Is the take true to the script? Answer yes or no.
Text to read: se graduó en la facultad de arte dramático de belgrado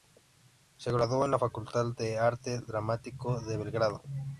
yes